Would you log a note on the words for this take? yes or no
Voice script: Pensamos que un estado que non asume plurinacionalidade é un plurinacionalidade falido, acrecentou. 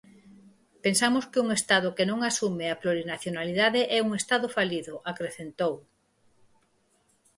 yes